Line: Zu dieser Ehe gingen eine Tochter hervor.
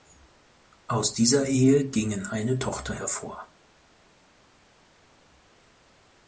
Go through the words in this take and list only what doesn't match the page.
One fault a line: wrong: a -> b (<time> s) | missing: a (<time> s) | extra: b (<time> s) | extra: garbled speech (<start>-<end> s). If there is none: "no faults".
wrong: Zu -> Aus (0.9 s)